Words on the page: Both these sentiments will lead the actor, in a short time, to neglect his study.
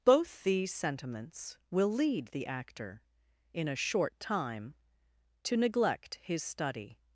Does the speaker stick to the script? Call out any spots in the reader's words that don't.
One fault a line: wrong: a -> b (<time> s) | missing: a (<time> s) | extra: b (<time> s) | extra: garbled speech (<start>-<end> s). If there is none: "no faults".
no faults